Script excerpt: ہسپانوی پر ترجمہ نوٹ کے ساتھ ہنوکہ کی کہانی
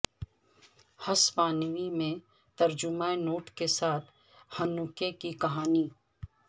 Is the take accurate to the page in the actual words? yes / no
no